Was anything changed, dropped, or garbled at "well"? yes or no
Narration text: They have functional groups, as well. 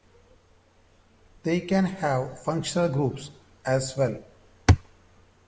no